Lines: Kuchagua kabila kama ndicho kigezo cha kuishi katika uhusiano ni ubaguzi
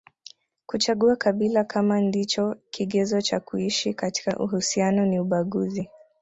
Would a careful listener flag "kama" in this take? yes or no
no